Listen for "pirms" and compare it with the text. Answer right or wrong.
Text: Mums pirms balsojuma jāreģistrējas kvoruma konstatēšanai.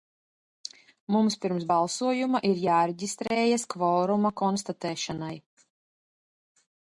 right